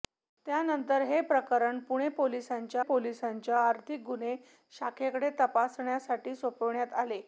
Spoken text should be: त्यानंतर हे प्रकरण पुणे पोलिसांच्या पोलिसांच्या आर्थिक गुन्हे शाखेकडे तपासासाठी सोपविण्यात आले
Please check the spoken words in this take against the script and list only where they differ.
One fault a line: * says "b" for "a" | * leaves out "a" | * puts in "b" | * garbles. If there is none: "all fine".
all fine